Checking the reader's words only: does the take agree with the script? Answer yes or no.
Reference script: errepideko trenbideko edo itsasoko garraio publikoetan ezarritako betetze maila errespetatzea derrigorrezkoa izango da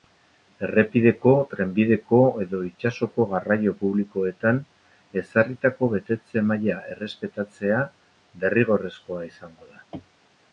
yes